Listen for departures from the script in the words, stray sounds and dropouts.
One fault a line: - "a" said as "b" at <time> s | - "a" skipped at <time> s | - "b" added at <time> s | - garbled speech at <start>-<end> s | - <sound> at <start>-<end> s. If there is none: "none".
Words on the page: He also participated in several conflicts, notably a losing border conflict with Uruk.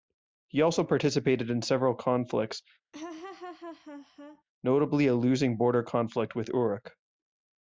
- laugh at 2.9-4.4 s